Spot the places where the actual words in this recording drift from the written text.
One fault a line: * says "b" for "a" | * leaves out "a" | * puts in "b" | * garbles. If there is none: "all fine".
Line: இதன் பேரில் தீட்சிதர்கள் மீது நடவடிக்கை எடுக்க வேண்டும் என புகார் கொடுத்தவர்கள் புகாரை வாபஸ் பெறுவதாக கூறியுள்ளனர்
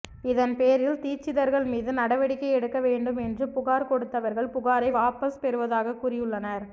* says "என்று" for "என"